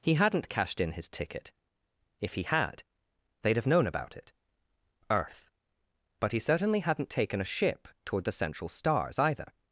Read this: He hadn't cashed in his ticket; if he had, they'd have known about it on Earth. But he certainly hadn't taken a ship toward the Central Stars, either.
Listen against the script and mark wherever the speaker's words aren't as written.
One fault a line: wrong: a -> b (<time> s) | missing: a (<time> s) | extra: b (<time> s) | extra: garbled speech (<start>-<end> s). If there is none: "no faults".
missing: on (4.3 s)